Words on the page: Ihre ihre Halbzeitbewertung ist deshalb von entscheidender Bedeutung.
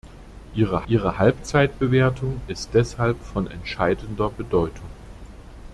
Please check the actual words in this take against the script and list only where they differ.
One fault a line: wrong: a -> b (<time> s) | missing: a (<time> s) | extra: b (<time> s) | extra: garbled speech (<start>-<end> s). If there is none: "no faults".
no faults